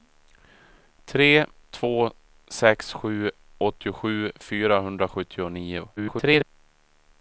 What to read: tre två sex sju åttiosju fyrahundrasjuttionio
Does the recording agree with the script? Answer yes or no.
no